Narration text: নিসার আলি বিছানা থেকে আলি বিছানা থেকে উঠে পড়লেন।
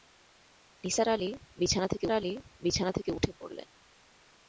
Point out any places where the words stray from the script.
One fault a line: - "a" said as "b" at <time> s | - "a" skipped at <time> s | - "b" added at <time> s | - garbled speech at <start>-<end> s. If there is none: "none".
none